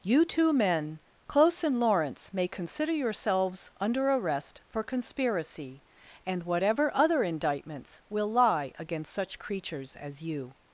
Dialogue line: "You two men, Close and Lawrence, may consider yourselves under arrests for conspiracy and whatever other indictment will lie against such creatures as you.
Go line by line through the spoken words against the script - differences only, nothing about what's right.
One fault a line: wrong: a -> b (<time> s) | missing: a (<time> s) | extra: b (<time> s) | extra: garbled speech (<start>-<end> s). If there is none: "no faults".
wrong: arrests -> arrest (4.1 s)
wrong: indictment -> indictments (7.2 s)